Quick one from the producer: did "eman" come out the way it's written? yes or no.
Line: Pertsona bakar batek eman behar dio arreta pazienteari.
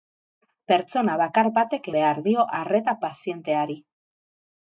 no